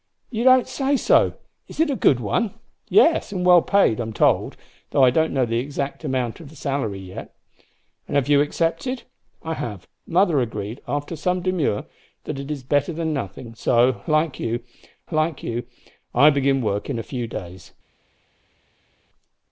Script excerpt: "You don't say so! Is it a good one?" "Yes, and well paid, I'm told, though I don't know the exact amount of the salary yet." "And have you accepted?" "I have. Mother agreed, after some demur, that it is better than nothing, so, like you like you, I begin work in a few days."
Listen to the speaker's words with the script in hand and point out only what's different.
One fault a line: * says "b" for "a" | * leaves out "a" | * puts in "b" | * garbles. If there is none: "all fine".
all fine